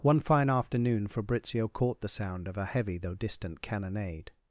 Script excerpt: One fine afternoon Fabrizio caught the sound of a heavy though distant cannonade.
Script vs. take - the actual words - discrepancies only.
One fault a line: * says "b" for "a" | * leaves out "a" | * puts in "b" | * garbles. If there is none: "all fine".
all fine